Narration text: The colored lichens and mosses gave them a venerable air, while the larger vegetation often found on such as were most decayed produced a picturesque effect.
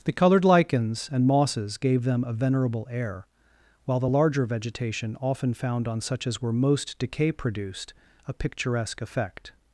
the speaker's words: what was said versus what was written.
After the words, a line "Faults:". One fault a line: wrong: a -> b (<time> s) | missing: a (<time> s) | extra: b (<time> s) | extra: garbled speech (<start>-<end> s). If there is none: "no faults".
The colored lichens and mosses gave them a venerable air, while the larger vegetation often found on such as were most decay produced a picturesque effect.
Faults:
wrong: decayed -> decay (7.0 s)